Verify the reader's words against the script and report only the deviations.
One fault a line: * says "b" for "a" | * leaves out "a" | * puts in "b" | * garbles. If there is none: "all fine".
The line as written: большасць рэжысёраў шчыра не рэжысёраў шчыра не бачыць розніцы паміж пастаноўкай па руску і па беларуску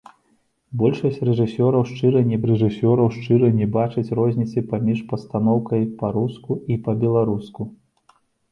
all fine